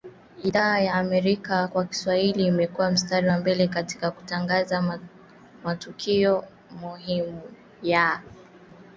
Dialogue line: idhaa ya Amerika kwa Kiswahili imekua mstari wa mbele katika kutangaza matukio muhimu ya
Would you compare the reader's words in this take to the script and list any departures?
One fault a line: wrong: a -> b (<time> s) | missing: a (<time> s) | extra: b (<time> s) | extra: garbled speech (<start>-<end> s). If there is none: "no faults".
no faults